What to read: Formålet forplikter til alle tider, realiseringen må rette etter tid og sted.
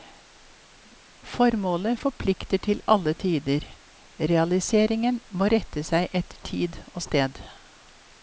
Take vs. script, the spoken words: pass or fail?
fail